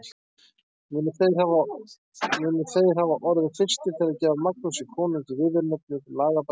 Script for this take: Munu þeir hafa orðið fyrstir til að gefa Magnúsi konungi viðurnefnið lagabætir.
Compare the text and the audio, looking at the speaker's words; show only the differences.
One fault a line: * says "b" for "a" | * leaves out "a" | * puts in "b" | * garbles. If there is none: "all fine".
all fine